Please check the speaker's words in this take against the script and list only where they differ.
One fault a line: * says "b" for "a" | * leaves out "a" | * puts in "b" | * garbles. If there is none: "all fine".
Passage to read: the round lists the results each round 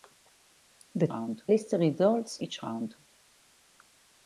all fine